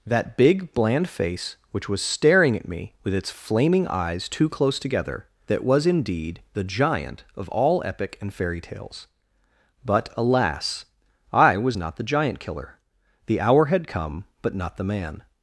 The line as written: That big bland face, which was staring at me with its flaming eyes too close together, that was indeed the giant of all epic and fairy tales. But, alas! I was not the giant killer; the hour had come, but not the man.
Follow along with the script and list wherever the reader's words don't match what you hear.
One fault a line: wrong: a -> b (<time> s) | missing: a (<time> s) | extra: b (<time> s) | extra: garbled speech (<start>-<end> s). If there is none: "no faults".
no faults